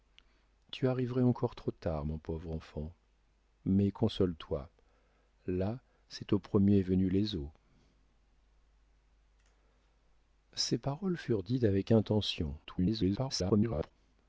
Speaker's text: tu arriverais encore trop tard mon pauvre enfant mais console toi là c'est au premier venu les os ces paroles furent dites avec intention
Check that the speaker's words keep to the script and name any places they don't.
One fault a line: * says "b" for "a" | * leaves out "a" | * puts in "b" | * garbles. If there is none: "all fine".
* garbles